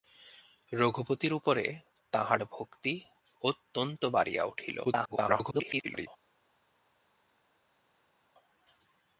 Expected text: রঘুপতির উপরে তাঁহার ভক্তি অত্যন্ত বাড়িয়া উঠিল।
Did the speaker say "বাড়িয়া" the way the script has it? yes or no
yes